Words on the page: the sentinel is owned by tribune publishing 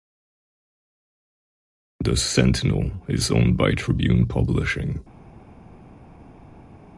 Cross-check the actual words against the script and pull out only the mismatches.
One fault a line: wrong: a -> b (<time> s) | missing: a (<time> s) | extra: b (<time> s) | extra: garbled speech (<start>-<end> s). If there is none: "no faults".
no faults